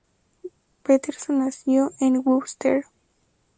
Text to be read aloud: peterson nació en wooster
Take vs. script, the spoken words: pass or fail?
pass